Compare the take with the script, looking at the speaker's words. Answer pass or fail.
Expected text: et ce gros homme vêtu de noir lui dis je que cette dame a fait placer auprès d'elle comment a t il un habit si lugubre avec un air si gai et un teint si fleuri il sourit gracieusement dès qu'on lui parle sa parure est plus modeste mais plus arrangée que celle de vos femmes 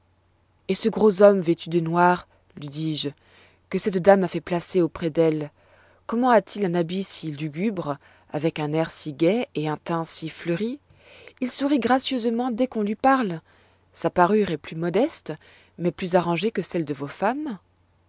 pass